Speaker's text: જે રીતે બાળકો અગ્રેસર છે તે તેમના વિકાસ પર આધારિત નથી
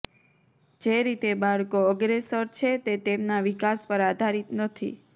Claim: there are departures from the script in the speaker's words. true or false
false